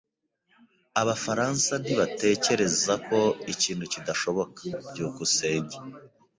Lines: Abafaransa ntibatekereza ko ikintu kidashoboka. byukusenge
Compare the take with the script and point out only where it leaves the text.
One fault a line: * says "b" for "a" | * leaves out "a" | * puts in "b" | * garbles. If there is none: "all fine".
all fine